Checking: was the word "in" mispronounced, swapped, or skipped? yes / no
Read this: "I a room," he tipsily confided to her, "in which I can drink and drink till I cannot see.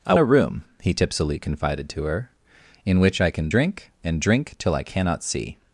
no